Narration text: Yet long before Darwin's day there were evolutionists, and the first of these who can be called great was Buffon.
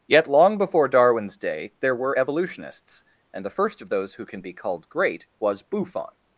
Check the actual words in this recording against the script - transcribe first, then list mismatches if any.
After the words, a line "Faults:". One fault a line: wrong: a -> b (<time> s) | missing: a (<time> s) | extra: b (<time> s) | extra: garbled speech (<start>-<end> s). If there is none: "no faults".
Yet long before Darwin's day there were evolutionists, and the first of those who can be called great was Buffon.
Faults:
wrong: these -> those (3.9 s)